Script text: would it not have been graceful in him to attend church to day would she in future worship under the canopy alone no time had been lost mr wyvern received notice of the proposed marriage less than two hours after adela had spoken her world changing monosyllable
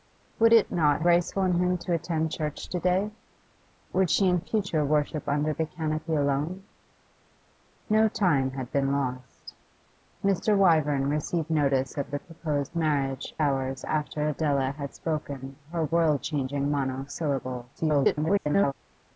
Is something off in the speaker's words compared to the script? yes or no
yes